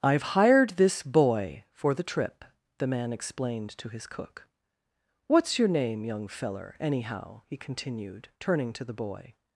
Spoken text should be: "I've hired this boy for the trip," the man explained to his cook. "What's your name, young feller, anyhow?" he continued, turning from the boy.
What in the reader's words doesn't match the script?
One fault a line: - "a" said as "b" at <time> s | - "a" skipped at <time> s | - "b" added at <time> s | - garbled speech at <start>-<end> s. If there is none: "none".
- "from" said as "to" at 8.7 s